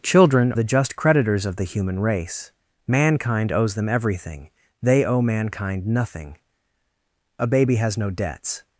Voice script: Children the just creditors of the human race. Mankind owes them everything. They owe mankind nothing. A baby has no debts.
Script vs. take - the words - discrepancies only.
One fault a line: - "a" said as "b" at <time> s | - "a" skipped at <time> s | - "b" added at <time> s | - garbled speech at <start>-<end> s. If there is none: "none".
none